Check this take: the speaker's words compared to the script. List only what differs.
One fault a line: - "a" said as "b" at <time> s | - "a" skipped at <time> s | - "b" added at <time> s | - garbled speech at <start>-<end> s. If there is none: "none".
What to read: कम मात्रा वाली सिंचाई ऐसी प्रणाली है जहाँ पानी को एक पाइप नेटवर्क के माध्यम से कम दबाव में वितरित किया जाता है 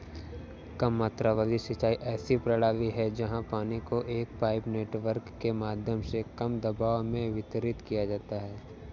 none